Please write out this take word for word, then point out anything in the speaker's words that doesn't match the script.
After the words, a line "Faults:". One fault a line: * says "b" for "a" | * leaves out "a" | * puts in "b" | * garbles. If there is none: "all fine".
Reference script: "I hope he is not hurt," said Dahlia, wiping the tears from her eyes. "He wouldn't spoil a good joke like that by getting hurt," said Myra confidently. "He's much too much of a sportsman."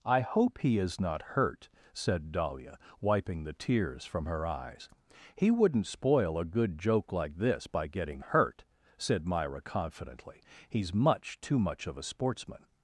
"I hope he is not hurt," said Dahlia, wiping the tears from her eyes. "He wouldn't spoil a good joke like this by getting hurt," said Myra confidently. "He's much too much of a sportsman."
Faults:
* says "this" for "that"